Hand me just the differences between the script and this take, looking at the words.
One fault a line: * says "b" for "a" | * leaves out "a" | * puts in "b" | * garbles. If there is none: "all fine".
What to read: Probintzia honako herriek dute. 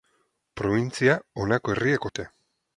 all fine